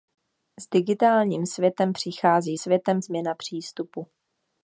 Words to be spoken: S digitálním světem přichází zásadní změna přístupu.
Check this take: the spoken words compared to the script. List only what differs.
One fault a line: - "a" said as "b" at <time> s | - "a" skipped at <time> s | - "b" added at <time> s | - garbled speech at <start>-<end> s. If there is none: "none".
- "zásadní" said as "světem" at 2.5 s